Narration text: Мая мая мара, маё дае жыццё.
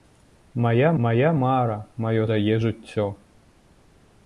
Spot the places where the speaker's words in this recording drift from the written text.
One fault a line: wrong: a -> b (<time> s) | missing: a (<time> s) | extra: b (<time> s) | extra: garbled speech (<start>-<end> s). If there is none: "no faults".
no faults